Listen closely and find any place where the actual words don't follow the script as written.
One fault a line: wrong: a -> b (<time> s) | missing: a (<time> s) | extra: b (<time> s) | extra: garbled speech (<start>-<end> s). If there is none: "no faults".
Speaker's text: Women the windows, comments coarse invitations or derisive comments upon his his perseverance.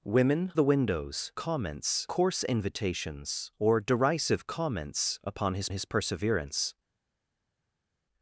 no faults